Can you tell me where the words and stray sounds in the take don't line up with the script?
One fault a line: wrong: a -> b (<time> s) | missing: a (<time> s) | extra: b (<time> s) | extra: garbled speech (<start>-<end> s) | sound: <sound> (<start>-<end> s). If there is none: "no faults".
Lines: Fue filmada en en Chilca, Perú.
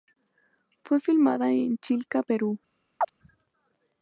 missing: en (1.8 s)
sound: chirp (3.0-3.1 s)